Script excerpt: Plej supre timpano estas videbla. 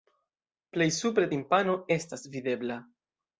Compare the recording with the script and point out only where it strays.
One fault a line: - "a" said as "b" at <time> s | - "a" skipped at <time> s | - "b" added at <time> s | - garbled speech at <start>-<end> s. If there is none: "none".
none